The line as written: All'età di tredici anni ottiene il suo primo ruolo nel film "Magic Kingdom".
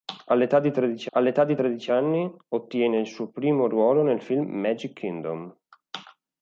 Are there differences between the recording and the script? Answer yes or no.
yes